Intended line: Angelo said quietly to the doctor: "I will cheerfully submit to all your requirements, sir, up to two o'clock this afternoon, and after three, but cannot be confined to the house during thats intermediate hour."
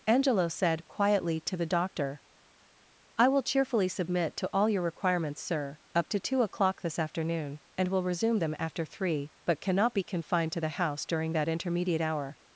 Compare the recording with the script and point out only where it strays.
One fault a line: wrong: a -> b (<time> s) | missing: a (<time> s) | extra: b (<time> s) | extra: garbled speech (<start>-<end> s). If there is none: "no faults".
extra: will resume them (7.9 s)
wrong: thats -> that (11.3 s)